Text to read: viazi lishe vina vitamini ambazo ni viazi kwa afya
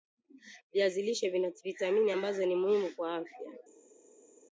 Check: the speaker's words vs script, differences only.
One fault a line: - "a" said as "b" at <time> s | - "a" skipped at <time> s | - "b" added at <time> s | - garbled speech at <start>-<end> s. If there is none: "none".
- "viazi" said as "muhimu" at 2.5 s